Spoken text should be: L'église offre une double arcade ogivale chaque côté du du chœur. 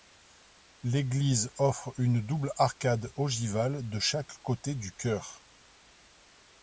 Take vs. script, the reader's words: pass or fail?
fail